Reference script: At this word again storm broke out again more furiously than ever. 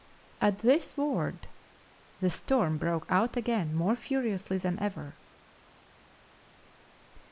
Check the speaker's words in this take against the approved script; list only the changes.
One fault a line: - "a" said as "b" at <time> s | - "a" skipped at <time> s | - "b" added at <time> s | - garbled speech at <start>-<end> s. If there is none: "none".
- "again" said as "the" at 2.2 s